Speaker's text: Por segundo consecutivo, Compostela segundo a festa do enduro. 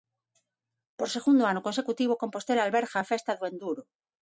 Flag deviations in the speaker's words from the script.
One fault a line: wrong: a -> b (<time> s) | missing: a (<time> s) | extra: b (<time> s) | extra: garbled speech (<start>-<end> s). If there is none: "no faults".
extra: ano (1.5 s)
wrong: segundo -> alberga (2.6 s)